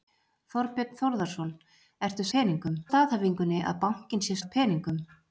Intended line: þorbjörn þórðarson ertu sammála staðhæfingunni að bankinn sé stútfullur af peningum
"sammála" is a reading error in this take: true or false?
true